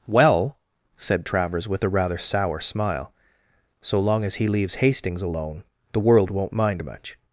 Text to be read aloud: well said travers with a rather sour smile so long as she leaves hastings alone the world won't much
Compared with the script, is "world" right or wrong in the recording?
right